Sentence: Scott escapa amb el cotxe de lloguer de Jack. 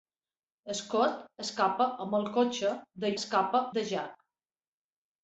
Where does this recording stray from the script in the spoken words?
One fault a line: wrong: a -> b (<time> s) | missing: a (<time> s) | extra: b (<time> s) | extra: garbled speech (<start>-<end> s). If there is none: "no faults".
wrong: lloguer -> escapa (3.2 s)